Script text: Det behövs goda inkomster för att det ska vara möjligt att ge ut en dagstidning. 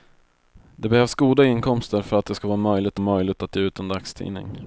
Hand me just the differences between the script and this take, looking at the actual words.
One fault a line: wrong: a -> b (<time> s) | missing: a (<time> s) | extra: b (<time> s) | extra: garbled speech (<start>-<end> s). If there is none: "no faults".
extra: möjligt (3.0 s)